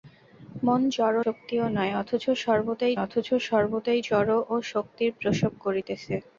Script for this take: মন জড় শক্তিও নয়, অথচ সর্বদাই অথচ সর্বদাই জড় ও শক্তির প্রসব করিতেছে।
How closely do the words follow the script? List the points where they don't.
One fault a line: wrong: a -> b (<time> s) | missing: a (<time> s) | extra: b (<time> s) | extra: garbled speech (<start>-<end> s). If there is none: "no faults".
no faults